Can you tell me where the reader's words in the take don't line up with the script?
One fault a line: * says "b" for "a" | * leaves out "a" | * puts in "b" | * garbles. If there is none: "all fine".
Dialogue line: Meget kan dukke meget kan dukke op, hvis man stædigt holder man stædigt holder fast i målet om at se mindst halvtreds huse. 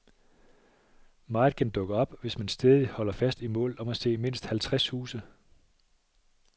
* leaves out "meget kan dukke"
* leaves out "man stædigt holder"